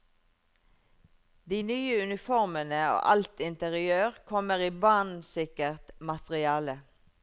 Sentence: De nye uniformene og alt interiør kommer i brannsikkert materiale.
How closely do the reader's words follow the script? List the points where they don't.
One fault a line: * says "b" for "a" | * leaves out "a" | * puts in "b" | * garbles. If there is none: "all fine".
all fine